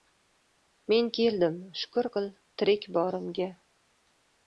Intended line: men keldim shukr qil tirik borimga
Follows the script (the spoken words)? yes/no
yes